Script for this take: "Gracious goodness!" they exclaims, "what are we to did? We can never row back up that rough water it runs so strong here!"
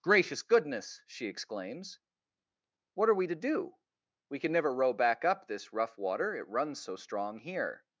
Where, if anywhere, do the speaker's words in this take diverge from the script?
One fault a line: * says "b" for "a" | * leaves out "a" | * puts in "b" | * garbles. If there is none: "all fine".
* says "she" for "they"
* says "do" for "did"
* says "this" for "that"